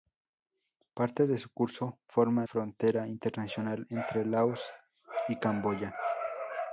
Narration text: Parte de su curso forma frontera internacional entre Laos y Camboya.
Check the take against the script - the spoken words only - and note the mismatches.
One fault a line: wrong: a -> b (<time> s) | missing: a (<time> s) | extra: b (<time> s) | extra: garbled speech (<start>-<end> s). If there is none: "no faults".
no faults